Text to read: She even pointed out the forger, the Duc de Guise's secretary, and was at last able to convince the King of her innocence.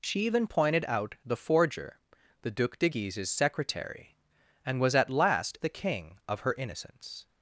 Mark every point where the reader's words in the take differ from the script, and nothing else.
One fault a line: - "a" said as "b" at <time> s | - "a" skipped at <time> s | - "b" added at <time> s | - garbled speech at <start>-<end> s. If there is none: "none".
- "able to convince" skipped at 5.6 s